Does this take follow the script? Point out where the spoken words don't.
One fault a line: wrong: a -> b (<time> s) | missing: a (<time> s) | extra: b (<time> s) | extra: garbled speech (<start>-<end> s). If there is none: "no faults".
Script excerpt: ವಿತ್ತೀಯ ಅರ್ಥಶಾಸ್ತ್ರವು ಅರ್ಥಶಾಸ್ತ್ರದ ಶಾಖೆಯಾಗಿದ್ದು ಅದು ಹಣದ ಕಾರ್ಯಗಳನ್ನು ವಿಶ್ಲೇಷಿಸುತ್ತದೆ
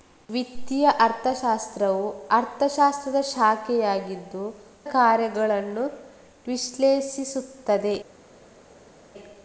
missing: ಅದು ಹಣದ (4.5 s)